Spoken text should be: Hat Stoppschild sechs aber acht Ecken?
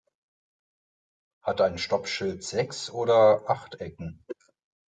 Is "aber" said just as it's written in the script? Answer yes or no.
no